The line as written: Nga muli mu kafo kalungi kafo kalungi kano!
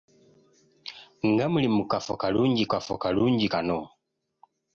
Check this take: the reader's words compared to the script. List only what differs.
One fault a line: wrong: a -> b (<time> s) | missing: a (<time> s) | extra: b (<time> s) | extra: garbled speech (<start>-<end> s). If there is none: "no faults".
no faults